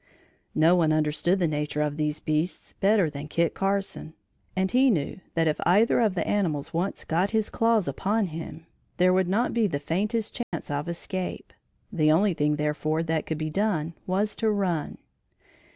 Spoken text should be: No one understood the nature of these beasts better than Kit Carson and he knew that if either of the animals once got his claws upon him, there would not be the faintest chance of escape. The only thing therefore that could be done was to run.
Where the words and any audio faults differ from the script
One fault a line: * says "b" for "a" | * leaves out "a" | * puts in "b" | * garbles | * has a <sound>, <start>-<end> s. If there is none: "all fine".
* has a dropout, 10.4-10.5 s